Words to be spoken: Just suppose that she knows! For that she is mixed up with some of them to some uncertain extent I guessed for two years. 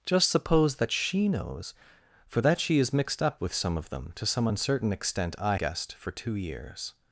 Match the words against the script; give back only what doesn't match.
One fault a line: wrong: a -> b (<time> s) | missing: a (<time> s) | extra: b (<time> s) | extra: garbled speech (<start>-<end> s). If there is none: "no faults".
no faults